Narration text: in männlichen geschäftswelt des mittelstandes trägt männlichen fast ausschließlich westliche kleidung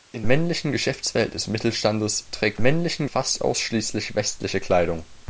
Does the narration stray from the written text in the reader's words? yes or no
no